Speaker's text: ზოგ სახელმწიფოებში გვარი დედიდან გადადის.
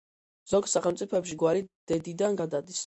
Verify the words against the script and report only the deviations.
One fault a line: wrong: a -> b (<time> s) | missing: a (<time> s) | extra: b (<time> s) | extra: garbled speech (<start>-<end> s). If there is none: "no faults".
no faults